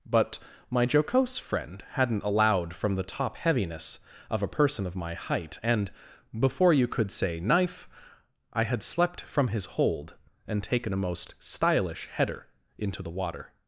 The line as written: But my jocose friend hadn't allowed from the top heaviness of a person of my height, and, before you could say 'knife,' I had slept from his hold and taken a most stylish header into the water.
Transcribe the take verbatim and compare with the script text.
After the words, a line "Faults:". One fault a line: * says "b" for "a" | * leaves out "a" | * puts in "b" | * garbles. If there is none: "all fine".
But my jocose friend hadn't allowed from the top heaviness of a person of my height, and, before you could say 'knife,' I had slept from his hold and taken a most stylish header into the water.
Faults:
all fine